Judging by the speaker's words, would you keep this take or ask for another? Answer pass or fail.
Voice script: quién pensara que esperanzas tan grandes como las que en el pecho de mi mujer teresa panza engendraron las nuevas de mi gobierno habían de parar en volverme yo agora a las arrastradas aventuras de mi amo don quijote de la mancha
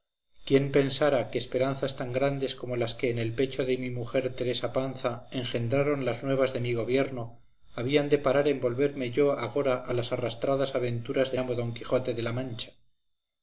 fail